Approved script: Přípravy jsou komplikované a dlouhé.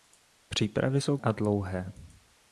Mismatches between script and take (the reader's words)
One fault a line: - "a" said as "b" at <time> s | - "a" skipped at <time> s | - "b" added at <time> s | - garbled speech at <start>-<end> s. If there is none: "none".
- "komplikované" skipped at 1.2 s